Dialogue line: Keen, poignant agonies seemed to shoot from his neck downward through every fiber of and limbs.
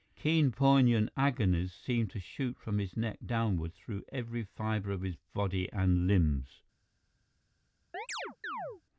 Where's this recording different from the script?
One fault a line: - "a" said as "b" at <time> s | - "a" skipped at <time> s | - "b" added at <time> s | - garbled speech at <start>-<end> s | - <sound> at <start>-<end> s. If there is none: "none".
- "his body" added at 5.0 s
- chirp at 7.9-8.8 s